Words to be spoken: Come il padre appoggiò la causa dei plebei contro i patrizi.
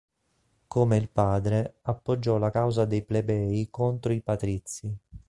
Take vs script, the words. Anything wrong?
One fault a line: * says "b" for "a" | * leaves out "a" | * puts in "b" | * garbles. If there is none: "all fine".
all fine